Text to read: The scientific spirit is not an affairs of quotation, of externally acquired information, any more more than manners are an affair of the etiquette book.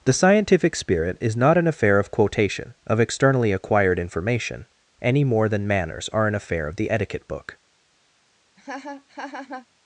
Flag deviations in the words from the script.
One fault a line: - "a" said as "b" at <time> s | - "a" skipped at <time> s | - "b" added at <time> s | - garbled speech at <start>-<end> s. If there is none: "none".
- "affairs" said as "affair" at 1.7 s
- "more" skipped at 5.5 s